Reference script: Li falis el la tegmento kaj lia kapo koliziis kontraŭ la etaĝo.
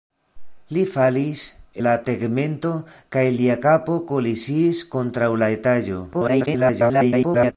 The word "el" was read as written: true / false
false